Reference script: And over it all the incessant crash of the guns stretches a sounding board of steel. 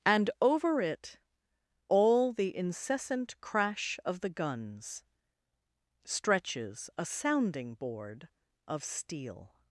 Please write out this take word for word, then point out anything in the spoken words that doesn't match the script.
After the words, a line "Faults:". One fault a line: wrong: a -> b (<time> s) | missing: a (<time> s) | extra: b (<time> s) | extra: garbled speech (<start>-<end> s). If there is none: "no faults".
And over it all the incessant crash of the guns stretches a sounding board of steel.
Faults:
no faults